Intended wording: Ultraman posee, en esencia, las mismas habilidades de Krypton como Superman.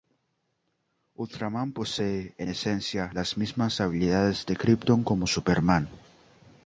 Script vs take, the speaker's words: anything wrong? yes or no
no